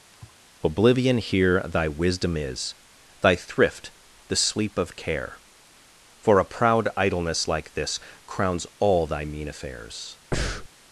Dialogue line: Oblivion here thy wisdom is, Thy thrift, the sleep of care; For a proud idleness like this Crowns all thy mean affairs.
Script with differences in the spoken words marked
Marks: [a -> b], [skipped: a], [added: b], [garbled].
Oblivion here thy wisdom is, Thy thrift, the sleep of care; For a proud idleness like this Crowns all thy mean affairs.